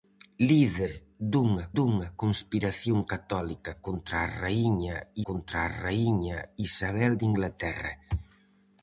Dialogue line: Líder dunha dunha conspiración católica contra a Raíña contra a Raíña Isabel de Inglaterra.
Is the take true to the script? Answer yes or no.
yes